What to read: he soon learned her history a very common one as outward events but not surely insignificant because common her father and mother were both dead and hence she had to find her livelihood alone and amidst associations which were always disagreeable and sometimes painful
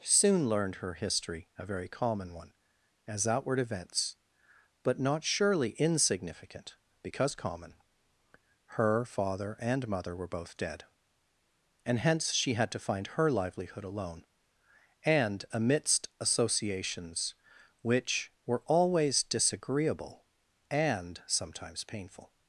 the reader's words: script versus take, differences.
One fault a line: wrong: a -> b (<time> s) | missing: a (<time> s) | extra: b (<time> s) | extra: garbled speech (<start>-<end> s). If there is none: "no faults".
missing: he (0.0 s)